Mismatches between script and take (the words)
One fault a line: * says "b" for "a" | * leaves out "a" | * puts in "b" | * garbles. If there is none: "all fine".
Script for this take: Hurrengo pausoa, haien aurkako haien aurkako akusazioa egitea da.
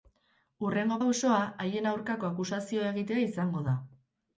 * leaves out "haien aurkako"
* puts in "izango"